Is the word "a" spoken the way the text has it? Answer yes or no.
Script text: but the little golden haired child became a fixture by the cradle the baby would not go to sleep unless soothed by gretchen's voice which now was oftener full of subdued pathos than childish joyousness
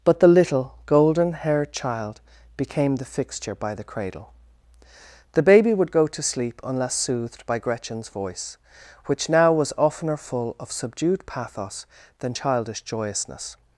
no